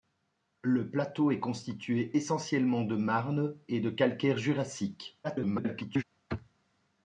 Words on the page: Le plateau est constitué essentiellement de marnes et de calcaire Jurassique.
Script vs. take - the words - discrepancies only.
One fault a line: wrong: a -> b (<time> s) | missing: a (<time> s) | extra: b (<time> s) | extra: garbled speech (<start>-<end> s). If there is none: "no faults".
extra: garbled speech (5.2-6.0 s)